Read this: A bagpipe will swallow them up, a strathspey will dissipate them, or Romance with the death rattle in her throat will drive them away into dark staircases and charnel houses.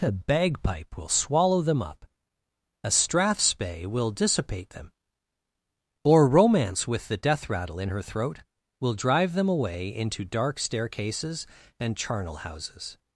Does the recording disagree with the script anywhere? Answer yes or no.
no